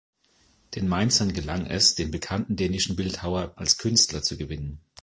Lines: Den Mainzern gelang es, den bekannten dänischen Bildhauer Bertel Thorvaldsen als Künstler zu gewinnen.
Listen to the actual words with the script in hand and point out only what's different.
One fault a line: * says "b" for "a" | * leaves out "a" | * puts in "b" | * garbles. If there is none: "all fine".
* leaves out "Bertel Thorvaldsen"